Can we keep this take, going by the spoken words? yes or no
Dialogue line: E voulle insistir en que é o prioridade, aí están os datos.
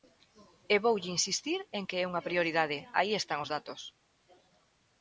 no